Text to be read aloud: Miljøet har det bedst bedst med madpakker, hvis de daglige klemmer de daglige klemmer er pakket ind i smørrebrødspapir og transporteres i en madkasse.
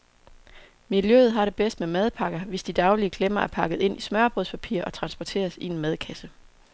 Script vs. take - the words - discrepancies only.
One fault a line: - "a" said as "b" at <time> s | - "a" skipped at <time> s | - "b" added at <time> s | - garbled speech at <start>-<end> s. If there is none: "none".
- "bedst" skipped at 1.8 s
- "de daglige klemmer" skipped at 3.4 s